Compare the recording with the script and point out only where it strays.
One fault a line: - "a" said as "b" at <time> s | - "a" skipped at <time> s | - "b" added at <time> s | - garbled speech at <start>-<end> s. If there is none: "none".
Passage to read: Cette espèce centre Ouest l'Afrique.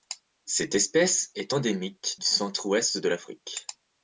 - "est endémique du" added at 1.4 s
- "de" added at 3.0 s